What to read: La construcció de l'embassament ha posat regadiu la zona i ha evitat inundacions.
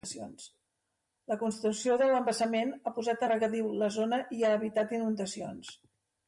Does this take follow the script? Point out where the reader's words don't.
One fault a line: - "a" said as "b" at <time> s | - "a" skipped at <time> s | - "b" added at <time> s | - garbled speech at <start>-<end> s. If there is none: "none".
none